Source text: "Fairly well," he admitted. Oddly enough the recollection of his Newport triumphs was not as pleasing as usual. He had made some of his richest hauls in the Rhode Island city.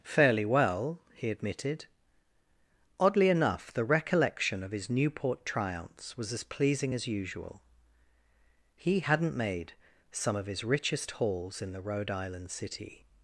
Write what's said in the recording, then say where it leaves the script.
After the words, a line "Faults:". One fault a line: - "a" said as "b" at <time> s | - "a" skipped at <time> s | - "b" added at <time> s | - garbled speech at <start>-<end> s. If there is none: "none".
"Fairly well," he admitted. Oddly enough the recollection of his Newport triumphs was as pleasing as usual. He hadn't made some of his richest hauls in the Rhode Island city.
Faults:
- "not" skipped at 6.3 s
- "had" said as "hadn't" at 9.0 s